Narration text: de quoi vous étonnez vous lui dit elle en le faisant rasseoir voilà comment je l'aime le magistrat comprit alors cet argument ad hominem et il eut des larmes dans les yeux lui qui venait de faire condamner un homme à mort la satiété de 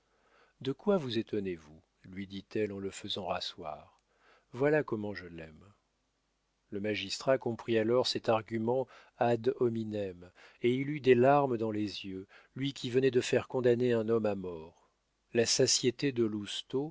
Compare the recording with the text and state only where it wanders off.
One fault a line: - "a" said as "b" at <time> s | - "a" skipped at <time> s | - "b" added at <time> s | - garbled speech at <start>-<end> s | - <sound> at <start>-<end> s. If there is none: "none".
none